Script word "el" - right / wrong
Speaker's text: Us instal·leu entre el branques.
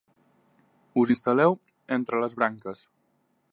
wrong